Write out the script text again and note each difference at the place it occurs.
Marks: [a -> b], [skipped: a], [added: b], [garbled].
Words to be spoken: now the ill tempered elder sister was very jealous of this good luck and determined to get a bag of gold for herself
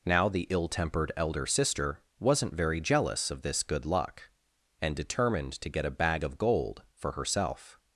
now the ill tempered elder sister [was -> wasn't] very jealous of this good luck and determined to get a bag of gold for herself